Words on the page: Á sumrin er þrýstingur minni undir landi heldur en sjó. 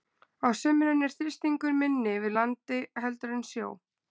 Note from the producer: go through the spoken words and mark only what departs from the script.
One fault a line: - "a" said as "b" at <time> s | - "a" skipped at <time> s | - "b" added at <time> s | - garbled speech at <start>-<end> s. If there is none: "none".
- "undir" said as "yfir" at 2.2 s